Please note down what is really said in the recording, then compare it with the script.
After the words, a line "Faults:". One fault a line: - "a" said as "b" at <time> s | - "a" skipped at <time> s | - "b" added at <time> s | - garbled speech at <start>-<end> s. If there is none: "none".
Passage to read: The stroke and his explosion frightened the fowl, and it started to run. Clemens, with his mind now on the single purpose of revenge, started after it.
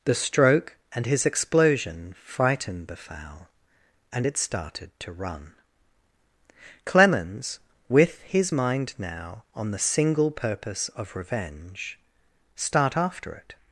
The stroke and his explosion frightened the fowl, and it started to run. Clemens, with his mind now on the single purpose of revenge, start after it.
Faults:
- "started" said as "start" at 12.6 s